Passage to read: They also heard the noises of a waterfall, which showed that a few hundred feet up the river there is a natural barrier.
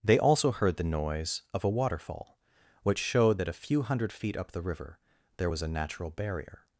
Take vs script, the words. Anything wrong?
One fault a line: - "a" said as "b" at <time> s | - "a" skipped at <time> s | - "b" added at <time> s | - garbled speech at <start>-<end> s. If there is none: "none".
- "noises" said as "noise" at 1.0 s
- "is" said as "was" at 5.5 s